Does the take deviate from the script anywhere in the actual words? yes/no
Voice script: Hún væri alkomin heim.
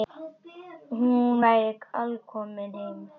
no